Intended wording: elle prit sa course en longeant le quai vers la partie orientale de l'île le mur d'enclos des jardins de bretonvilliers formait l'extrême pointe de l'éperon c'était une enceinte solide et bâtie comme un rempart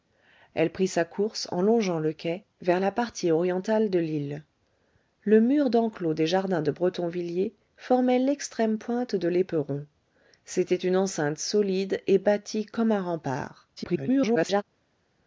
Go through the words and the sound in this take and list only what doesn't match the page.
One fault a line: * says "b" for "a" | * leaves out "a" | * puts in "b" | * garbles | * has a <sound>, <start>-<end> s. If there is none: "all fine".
* garbles